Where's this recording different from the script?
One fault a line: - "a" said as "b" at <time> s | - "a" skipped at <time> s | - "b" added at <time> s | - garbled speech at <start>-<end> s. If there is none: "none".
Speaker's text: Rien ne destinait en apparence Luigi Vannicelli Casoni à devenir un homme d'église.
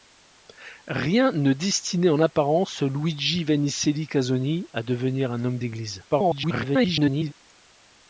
- garbled speech at 6.1-7.3 s